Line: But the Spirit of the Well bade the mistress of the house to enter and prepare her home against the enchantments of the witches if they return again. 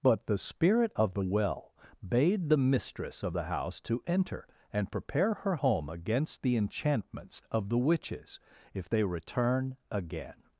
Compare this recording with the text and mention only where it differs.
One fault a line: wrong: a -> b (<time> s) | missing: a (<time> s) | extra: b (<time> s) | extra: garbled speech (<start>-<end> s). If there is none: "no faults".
no faults